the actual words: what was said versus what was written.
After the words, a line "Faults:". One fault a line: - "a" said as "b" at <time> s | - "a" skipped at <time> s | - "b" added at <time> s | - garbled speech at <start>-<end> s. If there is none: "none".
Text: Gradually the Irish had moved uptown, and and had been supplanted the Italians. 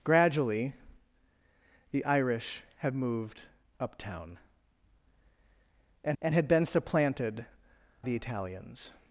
Gradually the Irish had moved uptown, and and had been supplanted the Italians.
Faults:
none